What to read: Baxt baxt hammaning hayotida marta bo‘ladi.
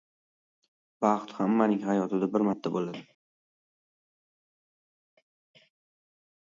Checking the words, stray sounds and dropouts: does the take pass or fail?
fail